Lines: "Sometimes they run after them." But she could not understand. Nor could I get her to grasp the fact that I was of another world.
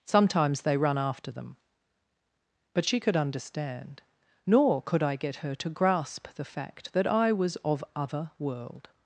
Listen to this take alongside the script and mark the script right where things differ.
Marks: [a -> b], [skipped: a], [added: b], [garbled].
"Sometimes they run after them." But she could [skipped: not] understand. Nor could I get her to grasp the fact that I was of [another -> other] world.